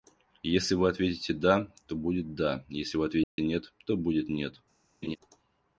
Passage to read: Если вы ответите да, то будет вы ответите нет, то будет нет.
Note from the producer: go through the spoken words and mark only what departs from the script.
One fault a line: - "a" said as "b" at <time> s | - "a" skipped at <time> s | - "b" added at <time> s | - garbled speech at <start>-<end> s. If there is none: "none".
- "да если" added at 2.3 s